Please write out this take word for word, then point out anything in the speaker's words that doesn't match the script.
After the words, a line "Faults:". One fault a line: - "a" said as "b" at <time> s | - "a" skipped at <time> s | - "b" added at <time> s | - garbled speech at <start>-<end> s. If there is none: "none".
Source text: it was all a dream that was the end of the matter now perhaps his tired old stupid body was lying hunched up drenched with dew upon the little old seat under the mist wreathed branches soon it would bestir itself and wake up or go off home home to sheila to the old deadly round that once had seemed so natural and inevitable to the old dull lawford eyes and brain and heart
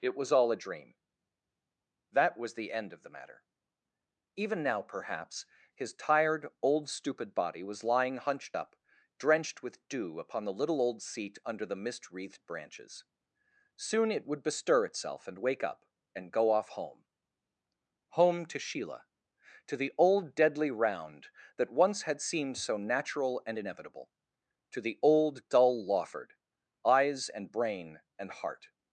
it was all a dream that was the end of the matter even now perhaps his tired old stupid body was lying hunched up drenched with dew upon the little old seat under the mist wreathed branches soon it would bestir itself and wake up and go off home home to sheila to the old deadly round that once had seemed so natural and inevitable to the old dull lawford eyes and brain and heart
Faults:
- "even" added at 4.3 s
- "or" said as "and" at 16.1 s